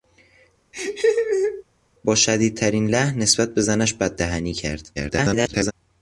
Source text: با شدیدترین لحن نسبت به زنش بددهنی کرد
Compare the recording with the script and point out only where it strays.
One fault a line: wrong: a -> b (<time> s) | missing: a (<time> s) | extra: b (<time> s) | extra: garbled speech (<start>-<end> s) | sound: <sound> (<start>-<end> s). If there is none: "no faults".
sound: laugh (0.7-1.6 s)
extra: garbled speech (4.9-5.7 s)